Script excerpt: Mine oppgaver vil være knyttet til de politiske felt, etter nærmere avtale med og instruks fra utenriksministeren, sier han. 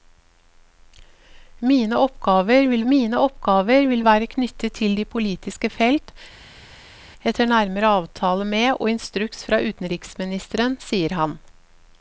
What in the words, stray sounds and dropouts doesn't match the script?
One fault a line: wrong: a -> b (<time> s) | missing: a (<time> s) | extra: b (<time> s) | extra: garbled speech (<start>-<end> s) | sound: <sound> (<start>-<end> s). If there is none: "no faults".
extra: mine oppgaver vil (2.9 s)